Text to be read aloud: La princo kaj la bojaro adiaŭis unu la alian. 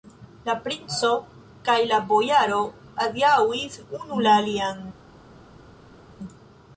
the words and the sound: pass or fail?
pass